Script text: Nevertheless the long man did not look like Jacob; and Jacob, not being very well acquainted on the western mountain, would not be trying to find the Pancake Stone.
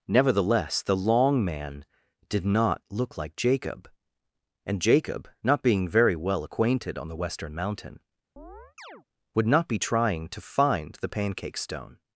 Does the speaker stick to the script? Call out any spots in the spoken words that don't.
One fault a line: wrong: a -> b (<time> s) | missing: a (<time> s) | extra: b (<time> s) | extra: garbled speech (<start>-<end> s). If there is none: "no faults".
no faults